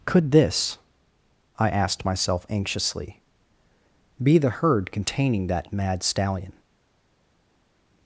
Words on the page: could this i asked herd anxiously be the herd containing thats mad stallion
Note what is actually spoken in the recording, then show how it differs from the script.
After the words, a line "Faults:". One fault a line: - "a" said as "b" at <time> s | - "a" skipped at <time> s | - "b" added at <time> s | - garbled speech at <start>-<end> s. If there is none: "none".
could this i asked myself anxiously be the herd containing that mad stallion
Faults:
- "herd" said as "myself" at 2.0 s
- "thats" said as "that" at 5.5 s